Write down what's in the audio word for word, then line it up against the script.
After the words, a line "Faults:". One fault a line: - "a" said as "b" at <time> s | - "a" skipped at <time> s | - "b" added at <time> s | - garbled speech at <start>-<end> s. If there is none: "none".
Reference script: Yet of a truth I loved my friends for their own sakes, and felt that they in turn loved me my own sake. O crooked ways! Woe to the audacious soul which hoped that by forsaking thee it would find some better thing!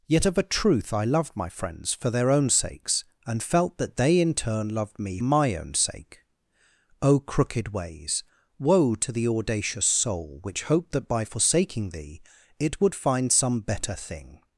Yet of a truth I loved my friends for their own sakes, and felt that they in turn loved me my own sake. O crooked ways! Woe to the audacious soul which hoped that by forsaking thee it would find some better thing!
Faults:
none